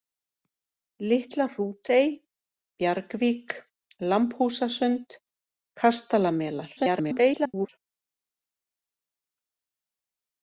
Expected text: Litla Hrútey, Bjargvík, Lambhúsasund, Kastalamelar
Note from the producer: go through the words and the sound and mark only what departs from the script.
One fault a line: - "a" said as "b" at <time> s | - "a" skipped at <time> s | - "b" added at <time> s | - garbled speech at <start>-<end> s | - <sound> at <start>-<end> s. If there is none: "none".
- garbled speech at 6.8-7.7 s